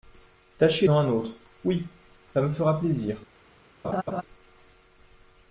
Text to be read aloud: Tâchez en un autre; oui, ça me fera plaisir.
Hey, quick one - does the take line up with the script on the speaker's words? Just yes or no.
yes